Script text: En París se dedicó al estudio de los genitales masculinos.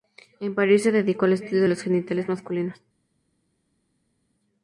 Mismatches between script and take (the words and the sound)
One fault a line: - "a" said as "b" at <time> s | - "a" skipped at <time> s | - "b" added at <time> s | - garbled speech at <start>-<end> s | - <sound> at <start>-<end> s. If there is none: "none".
none